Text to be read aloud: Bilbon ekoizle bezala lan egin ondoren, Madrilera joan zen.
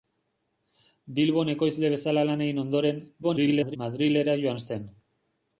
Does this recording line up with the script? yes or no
no